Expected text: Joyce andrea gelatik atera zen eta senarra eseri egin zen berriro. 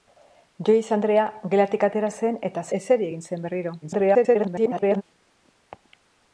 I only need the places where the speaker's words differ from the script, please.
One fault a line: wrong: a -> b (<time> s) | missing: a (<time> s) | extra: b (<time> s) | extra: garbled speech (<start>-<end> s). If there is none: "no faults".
missing: senarra (2.6 s)
extra: garbled speech (3.8-5.0 s)